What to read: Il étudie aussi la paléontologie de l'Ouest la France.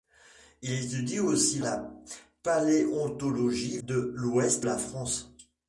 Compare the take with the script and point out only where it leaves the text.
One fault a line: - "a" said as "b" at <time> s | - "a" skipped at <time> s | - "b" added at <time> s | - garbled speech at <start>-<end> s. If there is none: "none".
none